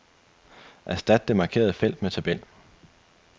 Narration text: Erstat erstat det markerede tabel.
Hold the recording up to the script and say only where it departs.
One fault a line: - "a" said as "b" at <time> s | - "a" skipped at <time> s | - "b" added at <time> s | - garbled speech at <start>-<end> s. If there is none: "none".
- "erstat" skipped at 1.3 s
- "felt med" added at 1.7 s